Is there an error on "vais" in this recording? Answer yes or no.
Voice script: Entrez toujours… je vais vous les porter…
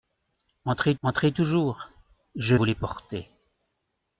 yes